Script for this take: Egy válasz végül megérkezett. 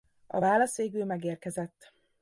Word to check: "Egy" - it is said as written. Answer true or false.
false